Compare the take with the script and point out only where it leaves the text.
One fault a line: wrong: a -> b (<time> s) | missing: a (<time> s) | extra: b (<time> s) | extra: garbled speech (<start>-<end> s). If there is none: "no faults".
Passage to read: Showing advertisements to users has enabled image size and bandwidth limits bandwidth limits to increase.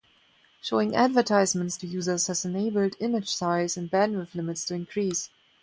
missing: bandwidth limits (4.6 s)